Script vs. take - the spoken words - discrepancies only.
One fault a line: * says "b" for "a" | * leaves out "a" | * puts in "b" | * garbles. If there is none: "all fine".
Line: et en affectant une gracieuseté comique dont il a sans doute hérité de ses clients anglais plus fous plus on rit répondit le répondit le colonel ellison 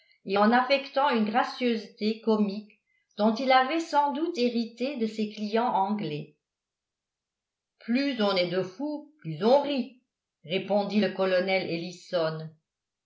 * says "avait" for "a"
* puts in "on est de"
* leaves out "répondit le"